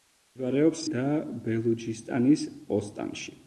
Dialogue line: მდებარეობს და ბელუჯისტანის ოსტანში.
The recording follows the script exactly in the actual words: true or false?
true